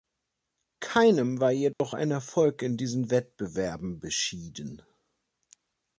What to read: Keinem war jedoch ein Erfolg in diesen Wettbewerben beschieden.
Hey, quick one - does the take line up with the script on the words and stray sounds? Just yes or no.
no